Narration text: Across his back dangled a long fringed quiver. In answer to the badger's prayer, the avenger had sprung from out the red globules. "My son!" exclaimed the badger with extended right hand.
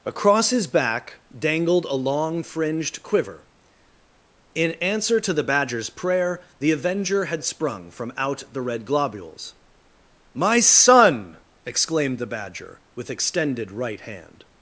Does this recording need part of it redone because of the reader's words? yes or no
no